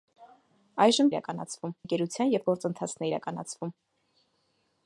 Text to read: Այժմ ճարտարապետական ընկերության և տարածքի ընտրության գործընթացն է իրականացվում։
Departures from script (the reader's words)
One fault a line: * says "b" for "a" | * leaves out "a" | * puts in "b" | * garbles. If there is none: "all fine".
* says "իրականացվում" for "ճարտարապետական"
* leaves out "տարածքի ընտրության"